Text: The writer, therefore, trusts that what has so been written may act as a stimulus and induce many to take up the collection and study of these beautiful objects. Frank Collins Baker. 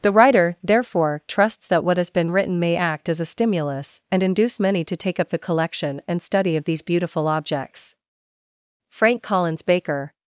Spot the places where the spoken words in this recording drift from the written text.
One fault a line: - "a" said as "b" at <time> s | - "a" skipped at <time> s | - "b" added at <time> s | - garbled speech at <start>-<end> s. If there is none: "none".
- "so" skipped at 2.1 s